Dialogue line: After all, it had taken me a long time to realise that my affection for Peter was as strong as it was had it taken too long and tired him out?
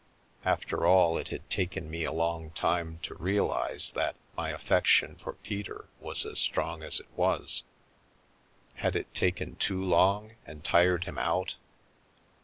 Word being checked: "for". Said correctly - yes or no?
yes